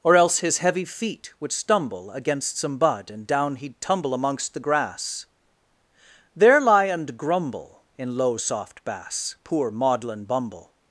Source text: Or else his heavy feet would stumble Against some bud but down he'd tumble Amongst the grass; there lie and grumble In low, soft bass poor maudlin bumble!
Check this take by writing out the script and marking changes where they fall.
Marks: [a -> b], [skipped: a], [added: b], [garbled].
Or else his heavy feet would stumble Against some bud [but -> and] down he'd tumble Amongst the grass; there lie and grumble In low, soft bass poor maudlin bumble!